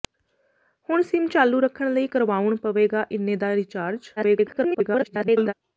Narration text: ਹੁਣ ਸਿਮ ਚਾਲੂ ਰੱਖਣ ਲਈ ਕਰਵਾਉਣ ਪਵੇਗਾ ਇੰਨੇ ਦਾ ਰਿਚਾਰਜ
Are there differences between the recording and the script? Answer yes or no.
yes